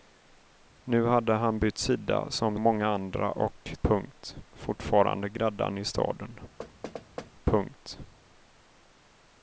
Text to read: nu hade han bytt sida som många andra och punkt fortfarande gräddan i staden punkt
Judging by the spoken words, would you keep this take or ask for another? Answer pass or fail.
pass